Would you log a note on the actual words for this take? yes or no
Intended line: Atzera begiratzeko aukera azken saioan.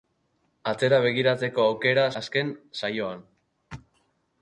no